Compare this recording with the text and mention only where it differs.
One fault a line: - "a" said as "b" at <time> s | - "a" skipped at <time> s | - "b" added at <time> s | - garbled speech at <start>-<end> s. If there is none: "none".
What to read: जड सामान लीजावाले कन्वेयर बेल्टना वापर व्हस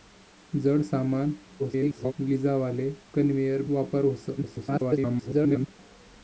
- garbled speech at 1.6-2.1 s
- "बेल्टना" skipped at 3.6 s
- garbled speech at 4.4-5.7 s